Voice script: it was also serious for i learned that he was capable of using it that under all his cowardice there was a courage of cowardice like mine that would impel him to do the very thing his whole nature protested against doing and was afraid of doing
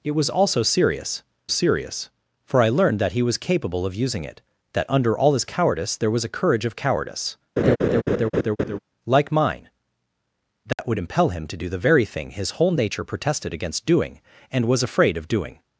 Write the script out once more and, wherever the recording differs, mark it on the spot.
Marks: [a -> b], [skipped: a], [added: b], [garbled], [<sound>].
it was also serious [added: serious] for i learned that he was capable of using it that under all his cowardice there was a courage of cowardice [laugh] like mine that [dropout] would impel him to do the very thing his whole nature protested against doing and was afraid of doing